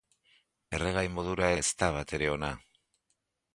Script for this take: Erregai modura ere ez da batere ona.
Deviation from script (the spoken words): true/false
true